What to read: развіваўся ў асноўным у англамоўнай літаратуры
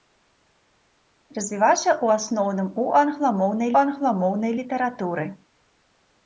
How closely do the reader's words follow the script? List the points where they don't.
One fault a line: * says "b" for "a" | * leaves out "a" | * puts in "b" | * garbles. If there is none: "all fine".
* puts in "англамоўнай"